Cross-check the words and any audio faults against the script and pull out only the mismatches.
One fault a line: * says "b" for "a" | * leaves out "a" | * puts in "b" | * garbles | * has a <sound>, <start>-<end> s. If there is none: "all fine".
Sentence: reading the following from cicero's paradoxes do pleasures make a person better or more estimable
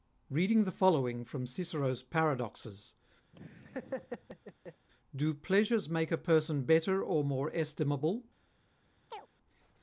* has a laugh, 3.3-4.9 s
* has a chirp, 9.1-9.3 s